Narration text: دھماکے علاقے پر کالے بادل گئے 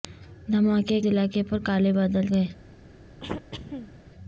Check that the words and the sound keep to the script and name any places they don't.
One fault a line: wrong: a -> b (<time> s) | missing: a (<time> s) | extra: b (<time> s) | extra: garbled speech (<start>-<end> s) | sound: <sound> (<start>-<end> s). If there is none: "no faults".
sound: throat clearing (3.2-3.9 s)